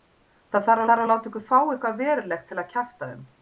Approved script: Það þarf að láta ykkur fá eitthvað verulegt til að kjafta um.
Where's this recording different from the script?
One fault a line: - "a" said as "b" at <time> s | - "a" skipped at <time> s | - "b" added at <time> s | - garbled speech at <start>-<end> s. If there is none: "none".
- "þarf" added at 0.9 s